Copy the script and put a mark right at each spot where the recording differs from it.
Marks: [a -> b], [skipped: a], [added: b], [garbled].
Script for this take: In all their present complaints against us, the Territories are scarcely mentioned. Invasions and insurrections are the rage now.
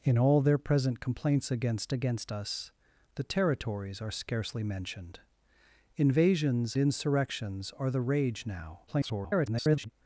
In all their present complaints against [added: against] us, the Territories are scarcely mentioned. Invasions [skipped: and] insurrections are the rage now. [garbled]